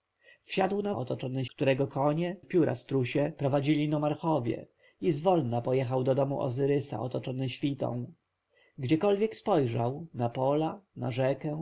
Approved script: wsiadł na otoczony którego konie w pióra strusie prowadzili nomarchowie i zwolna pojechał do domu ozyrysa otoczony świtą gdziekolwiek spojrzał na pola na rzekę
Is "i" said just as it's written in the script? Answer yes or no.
yes